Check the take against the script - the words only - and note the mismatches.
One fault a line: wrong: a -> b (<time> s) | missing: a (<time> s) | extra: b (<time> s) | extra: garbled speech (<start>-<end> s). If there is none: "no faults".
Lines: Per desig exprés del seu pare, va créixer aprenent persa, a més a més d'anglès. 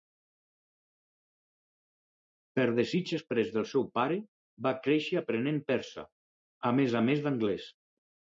no faults